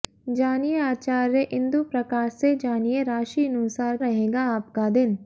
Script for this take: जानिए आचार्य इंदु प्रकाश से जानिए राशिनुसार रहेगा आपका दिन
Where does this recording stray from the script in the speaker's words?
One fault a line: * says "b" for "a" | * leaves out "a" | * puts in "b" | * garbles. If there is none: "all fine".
all fine